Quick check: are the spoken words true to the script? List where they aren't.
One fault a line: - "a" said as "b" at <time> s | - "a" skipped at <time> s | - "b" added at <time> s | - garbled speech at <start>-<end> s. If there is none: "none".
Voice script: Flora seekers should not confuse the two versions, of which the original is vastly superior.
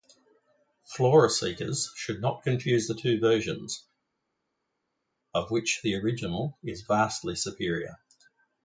none